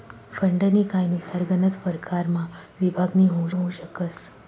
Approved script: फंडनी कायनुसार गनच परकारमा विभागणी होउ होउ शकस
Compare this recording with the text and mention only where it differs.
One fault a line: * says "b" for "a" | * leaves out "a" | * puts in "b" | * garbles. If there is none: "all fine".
all fine